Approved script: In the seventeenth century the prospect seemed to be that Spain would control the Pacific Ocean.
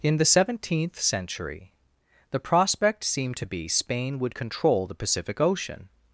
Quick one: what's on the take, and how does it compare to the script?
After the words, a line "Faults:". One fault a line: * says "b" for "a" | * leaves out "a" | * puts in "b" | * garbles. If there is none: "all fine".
In the seventeenth century the prospect seemed to be Spain would control the Pacific Ocean.
Faults:
* leaves out "that"